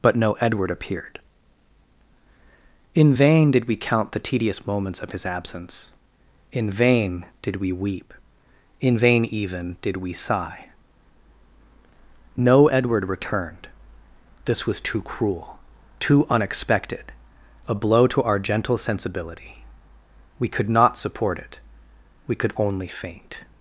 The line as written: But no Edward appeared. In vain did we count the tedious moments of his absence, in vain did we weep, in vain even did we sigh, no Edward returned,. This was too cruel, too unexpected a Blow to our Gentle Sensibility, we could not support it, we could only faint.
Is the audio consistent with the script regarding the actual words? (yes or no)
yes